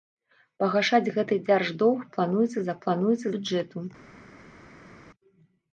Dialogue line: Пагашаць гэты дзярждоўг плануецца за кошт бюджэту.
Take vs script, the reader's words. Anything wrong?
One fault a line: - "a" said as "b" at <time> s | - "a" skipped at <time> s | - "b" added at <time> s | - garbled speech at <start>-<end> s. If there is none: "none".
- "кошт" said as "плануецца" at 2.9 s